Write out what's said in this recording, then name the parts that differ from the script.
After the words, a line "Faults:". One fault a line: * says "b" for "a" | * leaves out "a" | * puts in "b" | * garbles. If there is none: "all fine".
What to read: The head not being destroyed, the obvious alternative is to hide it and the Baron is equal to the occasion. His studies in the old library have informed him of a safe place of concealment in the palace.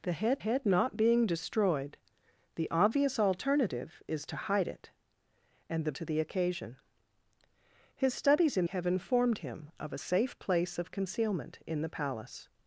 The head head not being destroyed, the obvious alternative is to hide it and the To the occasion. His studies in have informed him of a safe place of concealment in the palace.
Faults:
* puts in "head"
* leaves out "Baron is equal"
* leaves out "the old library"